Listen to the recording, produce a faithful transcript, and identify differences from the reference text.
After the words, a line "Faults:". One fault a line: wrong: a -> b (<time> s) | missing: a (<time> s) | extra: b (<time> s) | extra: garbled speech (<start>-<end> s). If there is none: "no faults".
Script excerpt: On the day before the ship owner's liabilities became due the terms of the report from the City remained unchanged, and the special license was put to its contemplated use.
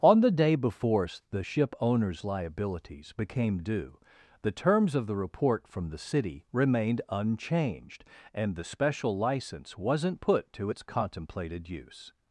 On the day before the ship owner's liabilities became due the terms of the report from the City remained unchanged, and the special license wasn't put to its contemplated use.
Faults:
wrong: was -> wasn't (9.8 s)